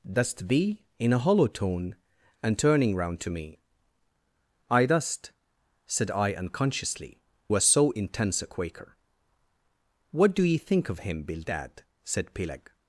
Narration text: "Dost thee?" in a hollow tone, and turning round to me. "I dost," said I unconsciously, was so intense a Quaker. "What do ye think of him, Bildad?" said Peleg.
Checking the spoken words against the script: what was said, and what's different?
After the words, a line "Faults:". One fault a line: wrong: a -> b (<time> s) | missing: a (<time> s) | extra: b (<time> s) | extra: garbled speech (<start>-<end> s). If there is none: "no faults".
"Dost thee?" in a hollow tone, and turning round to me. "I dost," said I unconsciously, was so intense a Quaker. "What do ye think of him, Bildad?" said Peleg.
Faults:
no faults